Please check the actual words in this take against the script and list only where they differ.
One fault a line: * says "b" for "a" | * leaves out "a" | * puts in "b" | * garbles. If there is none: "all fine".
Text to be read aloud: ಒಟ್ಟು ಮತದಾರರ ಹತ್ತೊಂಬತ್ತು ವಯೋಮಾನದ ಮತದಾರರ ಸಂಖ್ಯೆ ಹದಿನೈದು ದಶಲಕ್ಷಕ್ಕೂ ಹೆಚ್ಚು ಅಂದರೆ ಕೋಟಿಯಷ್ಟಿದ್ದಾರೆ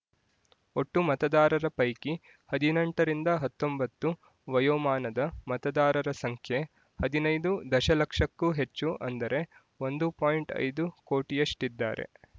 * puts in "ಪೈಕಿ ಹದಿನೆಂಟರಿಂದ"
* puts in "ಒಂದು ಪಾಯಿಂಟ್ ಐದು"